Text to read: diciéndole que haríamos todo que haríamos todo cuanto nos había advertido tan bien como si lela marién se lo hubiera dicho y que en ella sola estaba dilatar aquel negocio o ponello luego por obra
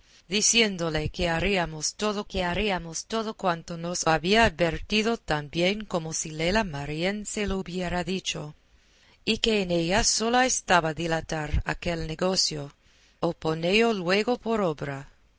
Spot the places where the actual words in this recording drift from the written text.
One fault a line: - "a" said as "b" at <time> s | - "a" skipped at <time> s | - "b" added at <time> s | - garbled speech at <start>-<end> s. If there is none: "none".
none